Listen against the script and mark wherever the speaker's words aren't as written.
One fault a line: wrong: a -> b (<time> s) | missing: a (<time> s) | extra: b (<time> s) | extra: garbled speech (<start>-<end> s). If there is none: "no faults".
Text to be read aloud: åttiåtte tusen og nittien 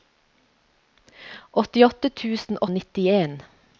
no faults